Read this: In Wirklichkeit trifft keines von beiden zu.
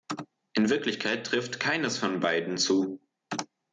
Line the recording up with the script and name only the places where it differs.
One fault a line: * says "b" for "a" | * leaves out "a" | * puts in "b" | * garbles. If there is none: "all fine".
all fine